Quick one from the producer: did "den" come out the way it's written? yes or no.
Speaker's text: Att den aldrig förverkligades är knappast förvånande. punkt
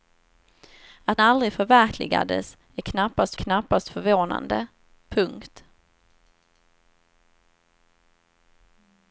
no